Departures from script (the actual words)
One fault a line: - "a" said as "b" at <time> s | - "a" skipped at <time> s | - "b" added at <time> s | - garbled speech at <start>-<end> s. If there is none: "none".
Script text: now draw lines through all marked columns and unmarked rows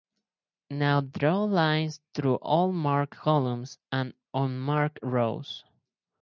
none